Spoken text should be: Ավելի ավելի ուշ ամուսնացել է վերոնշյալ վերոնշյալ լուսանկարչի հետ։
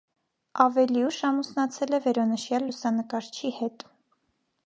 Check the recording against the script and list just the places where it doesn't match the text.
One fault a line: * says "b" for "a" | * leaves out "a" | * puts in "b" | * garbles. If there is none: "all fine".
* leaves out "ավելի"
* leaves out "վերոնշյալ"